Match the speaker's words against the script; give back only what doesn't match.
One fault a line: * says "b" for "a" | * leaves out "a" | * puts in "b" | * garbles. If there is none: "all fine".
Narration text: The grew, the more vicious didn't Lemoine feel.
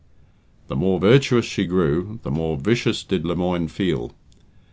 * puts in "more virtuous she"
* says "did" for "didn't"